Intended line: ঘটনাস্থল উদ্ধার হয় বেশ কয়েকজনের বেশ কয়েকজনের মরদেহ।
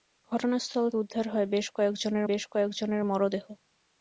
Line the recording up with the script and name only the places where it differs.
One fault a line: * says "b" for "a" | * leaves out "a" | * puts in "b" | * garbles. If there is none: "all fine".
all fine